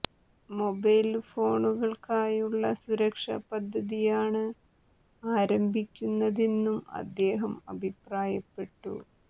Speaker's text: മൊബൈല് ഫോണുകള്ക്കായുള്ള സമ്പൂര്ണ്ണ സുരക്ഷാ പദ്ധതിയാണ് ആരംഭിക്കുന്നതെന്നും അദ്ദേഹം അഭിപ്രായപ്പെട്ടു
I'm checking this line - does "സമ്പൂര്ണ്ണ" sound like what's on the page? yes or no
no